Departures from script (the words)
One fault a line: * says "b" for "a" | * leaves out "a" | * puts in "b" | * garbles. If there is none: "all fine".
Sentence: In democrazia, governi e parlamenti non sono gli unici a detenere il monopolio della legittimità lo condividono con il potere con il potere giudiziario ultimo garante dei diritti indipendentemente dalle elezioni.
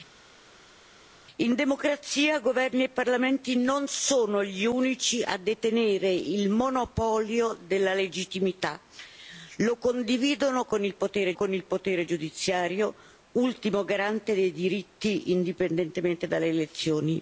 all fine